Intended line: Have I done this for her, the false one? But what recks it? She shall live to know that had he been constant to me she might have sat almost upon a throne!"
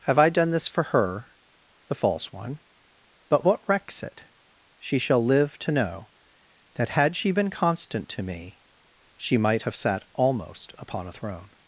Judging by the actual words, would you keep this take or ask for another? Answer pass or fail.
fail